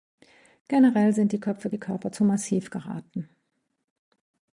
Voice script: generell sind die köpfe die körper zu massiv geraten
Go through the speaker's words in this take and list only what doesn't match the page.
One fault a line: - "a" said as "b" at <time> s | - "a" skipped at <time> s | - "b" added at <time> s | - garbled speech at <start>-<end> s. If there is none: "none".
none